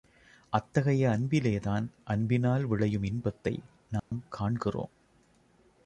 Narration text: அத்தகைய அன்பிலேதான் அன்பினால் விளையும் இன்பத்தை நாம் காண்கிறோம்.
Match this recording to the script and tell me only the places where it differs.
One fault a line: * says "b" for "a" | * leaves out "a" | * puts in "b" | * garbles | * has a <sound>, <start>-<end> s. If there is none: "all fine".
* has a dropout, 4.0-4.1 s